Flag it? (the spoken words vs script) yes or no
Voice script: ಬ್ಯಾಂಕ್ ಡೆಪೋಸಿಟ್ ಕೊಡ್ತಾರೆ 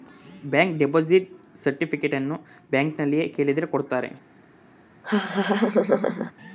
yes